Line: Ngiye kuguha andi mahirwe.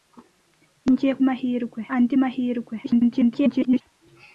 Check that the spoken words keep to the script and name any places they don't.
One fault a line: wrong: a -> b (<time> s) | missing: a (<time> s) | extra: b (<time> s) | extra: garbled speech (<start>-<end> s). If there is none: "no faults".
wrong: kuguha -> mahirwe (1.3 s)
extra: garbled speech (2.8-3.8 s)